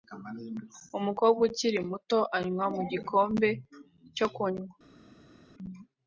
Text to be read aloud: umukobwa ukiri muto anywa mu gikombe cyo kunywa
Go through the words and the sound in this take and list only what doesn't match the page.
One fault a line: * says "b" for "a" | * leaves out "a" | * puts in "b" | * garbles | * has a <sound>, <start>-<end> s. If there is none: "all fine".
all fine